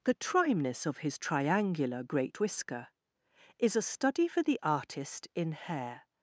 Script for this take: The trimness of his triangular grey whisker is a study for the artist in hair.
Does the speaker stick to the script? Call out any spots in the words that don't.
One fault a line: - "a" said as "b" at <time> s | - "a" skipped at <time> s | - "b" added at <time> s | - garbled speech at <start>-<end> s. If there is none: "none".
- "grey" said as "great" at 2.0 s